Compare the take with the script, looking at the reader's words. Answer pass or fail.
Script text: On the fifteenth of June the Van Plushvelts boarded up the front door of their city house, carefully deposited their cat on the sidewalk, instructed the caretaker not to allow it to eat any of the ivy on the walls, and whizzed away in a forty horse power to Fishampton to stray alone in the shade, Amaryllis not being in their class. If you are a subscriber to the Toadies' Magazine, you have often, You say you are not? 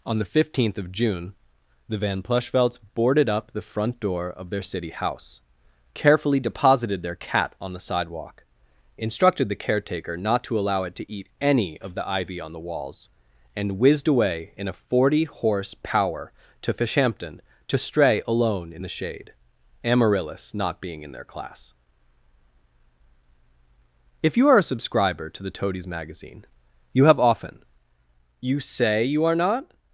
pass